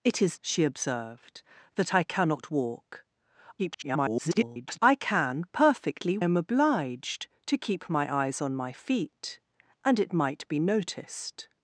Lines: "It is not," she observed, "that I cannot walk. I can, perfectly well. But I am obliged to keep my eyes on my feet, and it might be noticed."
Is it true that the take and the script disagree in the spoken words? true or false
true